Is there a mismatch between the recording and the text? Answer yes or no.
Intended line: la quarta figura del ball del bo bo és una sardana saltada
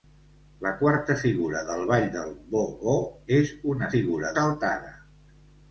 yes